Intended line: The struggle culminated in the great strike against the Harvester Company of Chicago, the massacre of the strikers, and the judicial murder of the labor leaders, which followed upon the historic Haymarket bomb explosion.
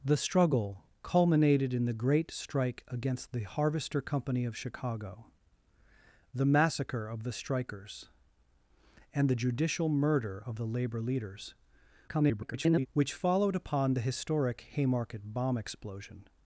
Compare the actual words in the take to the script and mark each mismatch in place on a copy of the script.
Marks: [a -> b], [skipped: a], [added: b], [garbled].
The struggle culminated in the great strike against the Harvester Company of Chicago, the massacre of the strikers, and the judicial murder of the labor leaders, [garbled] which followed upon the historic Haymarket bomb explosion.